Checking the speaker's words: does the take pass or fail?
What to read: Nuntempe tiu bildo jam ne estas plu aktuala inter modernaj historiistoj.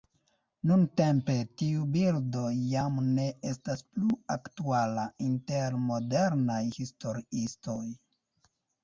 pass